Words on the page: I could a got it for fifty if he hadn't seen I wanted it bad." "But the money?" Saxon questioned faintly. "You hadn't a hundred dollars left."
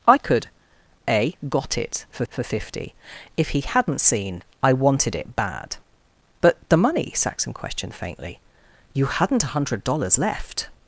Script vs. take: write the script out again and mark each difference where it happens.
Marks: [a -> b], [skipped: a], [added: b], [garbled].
I could a got it for [added: for] fifty if he hadn't seen I wanted it bad." "But the money?" Saxon questioned faintly. "You hadn't a hundred dollars left."